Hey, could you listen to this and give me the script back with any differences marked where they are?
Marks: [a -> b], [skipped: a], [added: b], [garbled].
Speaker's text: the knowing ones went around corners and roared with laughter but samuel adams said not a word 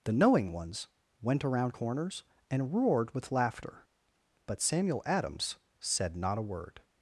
the knowing ones went around corners and roared with laughter but samuel adams said not a word